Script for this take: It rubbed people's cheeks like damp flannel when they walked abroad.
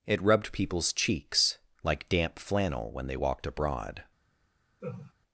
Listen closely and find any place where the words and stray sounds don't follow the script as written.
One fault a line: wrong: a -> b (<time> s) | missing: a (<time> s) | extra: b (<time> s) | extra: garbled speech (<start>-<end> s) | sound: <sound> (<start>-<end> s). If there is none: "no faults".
sound: laugh (4.8-5.1 s)